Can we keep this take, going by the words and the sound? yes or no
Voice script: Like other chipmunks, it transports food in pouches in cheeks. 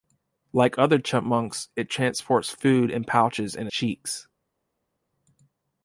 yes